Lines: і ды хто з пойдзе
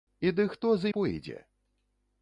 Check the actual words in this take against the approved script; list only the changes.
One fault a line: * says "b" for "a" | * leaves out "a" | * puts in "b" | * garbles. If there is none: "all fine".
all fine